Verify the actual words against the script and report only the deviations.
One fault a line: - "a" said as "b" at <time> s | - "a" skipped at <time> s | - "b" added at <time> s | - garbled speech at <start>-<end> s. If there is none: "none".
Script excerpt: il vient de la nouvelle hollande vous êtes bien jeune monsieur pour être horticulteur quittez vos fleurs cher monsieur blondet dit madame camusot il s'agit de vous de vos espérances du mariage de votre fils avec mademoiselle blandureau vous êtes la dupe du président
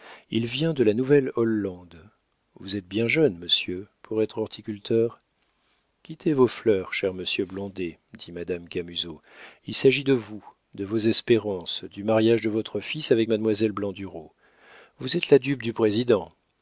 none